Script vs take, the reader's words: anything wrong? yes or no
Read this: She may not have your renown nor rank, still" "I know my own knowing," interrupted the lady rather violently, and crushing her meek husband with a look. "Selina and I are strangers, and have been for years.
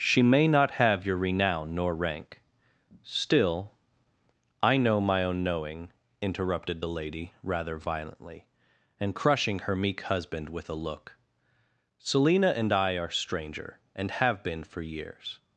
yes